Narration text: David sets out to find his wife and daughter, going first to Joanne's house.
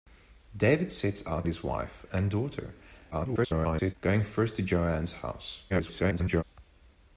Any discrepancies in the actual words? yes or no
yes